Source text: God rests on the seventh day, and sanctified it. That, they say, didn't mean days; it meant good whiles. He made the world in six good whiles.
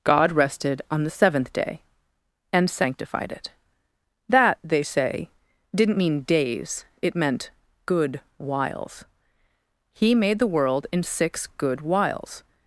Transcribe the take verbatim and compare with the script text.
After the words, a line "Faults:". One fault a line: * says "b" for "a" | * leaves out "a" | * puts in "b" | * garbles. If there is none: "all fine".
God rested on the seventh day, and sanctified it. That, they say, didn't mean days; it meant good whiles. He made the world in six good whiles.
Faults:
* says "rested" for "rests"